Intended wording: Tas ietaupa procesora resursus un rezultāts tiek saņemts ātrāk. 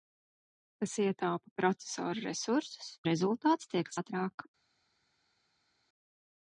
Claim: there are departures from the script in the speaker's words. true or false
true